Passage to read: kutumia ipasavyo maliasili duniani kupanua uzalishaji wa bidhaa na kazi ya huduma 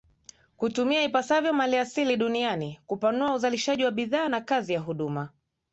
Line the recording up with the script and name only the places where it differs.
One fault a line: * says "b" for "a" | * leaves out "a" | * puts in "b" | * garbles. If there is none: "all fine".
all fine